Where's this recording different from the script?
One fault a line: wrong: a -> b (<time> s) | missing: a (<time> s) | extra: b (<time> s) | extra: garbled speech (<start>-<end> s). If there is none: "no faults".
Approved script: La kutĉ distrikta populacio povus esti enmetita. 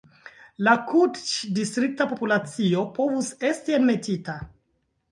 no faults